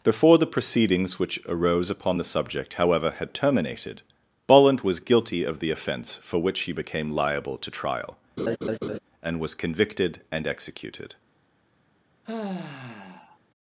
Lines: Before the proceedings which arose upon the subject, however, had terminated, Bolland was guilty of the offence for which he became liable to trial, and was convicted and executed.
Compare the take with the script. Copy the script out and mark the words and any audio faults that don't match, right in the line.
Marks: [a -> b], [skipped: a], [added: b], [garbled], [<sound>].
Before the proceedings which arose upon the subject, however, had terminated, Bolland was guilty of the offence for which he became liable to trial, [laugh] and was convicted and executed. [sigh]